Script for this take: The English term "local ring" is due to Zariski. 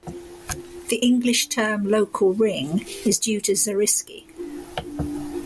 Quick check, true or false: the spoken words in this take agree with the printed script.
true